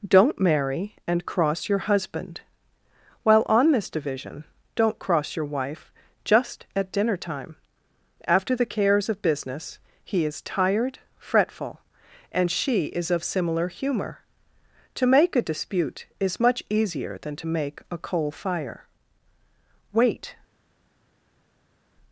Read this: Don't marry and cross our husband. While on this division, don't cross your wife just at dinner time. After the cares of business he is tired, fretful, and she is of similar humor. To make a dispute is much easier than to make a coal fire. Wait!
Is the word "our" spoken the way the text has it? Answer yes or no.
no